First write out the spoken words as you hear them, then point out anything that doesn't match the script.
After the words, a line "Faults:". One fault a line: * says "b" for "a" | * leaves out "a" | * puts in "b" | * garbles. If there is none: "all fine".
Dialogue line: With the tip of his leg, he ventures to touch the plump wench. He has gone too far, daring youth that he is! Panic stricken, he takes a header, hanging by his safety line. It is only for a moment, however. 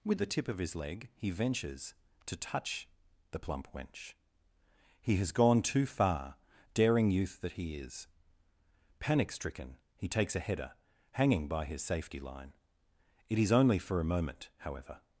With the tip of his leg, he ventures to touch the plump wench. He has gone too far, daring youth that he is! Panic stricken, he takes a header, hanging by his safety line. It is only for a moment, however.
Faults:
all fine